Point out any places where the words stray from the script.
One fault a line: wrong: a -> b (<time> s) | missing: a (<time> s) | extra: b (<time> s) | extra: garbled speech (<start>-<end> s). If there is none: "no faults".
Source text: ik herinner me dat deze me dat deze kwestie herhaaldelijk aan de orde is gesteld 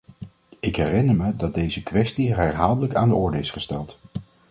missing: me dat deze (1.8 s)